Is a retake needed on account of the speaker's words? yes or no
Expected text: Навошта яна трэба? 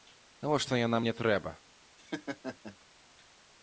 yes